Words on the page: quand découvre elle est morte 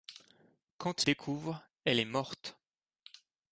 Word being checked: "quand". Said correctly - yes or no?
yes